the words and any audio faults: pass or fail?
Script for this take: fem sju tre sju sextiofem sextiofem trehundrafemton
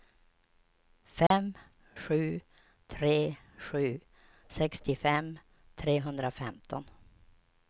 fail